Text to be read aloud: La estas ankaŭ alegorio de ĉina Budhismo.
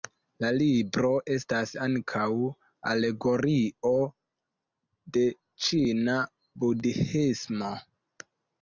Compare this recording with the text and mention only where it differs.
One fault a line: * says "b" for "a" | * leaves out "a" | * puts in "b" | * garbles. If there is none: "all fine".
* puts in "libro"